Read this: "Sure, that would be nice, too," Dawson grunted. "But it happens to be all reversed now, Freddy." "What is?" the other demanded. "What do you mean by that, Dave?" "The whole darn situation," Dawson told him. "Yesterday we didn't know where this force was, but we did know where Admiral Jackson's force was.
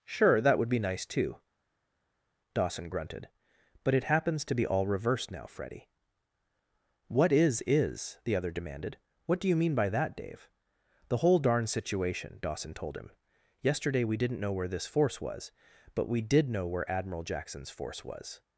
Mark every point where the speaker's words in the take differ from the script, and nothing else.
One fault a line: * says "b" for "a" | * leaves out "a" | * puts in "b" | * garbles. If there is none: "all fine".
* puts in "is"